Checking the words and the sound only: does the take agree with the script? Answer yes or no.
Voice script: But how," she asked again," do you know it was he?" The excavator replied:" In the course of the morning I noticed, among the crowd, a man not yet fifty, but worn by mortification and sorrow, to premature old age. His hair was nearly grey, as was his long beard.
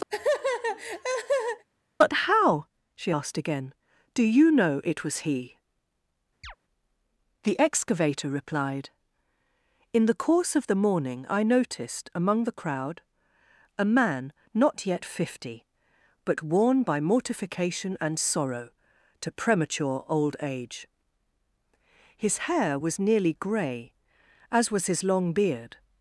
no